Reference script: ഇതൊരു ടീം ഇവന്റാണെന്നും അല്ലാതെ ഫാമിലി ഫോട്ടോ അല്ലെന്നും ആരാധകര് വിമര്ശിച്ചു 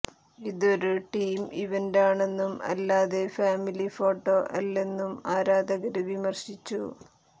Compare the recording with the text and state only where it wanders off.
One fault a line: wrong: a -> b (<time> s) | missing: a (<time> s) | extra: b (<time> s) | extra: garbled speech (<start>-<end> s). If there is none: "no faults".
no faults